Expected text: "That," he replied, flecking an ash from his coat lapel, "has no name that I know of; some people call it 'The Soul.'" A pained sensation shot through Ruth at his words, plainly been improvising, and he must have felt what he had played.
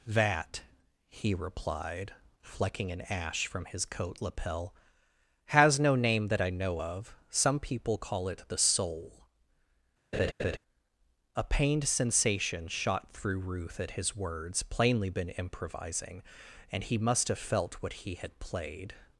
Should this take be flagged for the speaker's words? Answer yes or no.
no